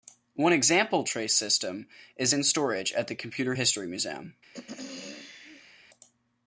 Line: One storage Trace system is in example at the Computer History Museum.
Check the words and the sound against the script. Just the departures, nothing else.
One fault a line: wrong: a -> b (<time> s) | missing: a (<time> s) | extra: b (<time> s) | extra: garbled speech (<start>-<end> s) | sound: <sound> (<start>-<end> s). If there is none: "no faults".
wrong: storage -> example (0.5 s)
wrong: example -> storage (2.4 s)
sound: throat clearing (4.5-5.8 s)